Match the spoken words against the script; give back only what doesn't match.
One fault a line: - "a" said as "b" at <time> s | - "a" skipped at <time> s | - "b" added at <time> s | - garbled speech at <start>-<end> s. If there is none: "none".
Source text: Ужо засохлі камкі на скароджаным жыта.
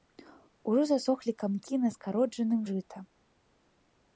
none